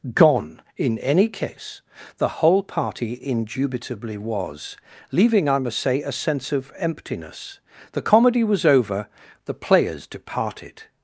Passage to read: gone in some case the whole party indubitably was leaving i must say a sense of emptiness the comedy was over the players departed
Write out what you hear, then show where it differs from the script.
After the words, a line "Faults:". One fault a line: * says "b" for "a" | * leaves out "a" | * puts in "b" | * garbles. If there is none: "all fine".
gone in any case the whole party indubitably was leaving i must say a sense of emptiness the comedy was over the players departed
Faults:
* says "any" for "some"